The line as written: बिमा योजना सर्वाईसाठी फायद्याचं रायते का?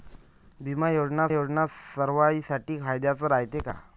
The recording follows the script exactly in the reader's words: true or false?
false